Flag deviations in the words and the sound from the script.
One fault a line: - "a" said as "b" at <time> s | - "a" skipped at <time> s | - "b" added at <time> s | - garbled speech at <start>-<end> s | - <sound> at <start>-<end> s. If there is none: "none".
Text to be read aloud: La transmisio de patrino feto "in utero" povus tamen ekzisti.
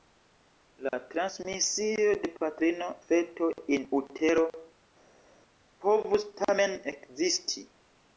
none